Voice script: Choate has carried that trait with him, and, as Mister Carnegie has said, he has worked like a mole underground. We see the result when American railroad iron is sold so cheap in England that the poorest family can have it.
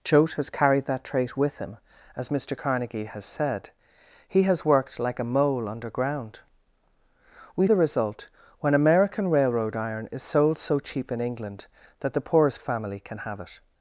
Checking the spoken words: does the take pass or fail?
fail